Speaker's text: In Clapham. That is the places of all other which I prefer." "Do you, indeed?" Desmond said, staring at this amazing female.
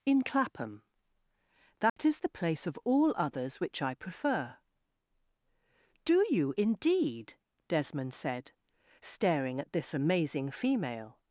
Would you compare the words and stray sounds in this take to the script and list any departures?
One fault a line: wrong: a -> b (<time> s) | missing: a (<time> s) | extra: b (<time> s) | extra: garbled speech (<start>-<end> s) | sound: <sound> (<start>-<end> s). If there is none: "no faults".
sound: dropout (1.9-2.0 s)
wrong: places -> place (2.3 s)
wrong: other -> others (3.2 s)